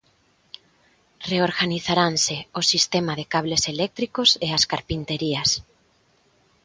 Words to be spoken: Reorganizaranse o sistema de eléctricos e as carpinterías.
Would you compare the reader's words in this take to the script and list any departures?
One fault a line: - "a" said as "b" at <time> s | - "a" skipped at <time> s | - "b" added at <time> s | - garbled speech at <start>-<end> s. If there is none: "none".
- "cables" added at 3.3 s